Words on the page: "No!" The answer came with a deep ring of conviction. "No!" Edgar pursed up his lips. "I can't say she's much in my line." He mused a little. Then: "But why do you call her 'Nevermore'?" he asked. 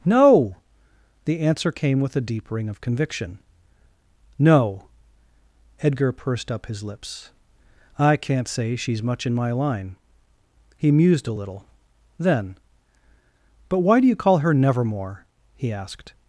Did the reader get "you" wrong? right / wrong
right